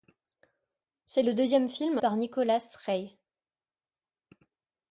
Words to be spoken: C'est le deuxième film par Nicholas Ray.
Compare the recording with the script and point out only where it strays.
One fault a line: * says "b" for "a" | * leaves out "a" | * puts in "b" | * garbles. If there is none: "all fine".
all fine